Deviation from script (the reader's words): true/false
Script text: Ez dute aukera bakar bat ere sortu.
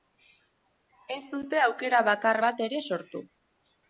false